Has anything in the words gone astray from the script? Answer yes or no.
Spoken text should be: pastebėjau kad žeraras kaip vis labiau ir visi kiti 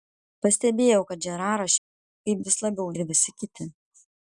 no